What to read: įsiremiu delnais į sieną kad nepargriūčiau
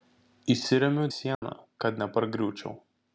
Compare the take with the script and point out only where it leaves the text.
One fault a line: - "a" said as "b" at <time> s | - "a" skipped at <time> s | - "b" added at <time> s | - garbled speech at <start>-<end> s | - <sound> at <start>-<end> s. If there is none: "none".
- "delnais" skipped at 1.1 s
- dropout at 1.3-1.4 s